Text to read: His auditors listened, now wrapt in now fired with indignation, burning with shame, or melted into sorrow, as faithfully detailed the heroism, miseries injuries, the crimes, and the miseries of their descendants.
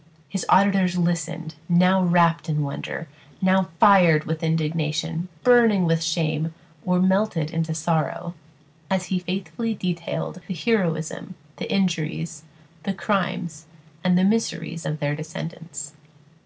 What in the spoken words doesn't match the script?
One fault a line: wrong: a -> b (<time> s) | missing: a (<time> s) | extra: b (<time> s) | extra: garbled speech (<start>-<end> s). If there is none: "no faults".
extra: wonder (2.6 s)
extra: he (9.1 s)
wrong: miseries -> the (11.6 s)